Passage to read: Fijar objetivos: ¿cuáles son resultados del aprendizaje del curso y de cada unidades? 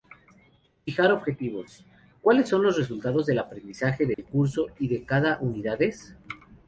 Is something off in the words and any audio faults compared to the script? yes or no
yes